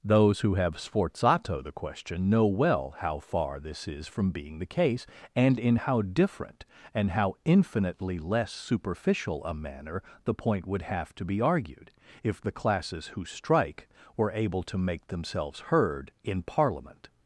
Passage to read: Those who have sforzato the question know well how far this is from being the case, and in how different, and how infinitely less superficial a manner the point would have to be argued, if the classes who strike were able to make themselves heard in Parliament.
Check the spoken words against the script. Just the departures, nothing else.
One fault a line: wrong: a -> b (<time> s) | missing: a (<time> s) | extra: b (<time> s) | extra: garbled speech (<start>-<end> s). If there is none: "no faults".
no faults